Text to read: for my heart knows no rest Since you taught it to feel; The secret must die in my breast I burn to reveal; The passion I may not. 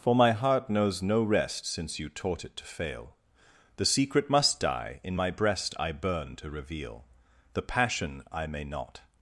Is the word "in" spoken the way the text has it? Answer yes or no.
yes